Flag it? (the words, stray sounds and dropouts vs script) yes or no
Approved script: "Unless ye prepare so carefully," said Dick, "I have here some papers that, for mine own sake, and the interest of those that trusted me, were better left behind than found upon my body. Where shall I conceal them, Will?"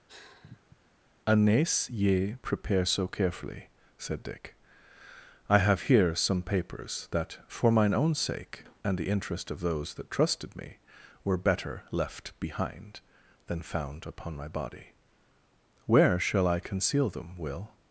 yes